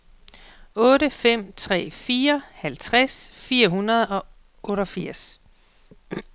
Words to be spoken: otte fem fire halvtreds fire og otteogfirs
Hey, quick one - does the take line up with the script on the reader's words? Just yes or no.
no